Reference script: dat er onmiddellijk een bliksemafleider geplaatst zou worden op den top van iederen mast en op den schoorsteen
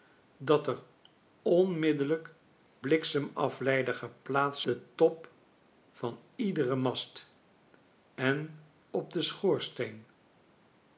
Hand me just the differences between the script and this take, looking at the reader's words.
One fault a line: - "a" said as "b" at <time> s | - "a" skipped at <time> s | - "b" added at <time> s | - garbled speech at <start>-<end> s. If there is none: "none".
- "een" skipped at 2.3 s
- "zou worden op" skipped at 4.6 s